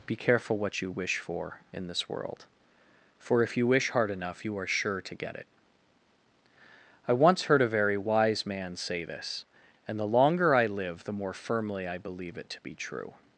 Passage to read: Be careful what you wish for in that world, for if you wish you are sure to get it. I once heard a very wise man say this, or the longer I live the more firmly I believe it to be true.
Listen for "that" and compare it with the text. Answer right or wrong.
wrong